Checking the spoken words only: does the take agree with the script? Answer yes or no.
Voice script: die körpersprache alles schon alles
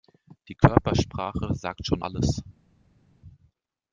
no